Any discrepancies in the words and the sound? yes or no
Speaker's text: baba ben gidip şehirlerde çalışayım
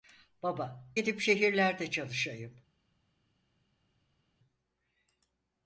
yes